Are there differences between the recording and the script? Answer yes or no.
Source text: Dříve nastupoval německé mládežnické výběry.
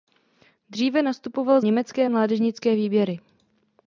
no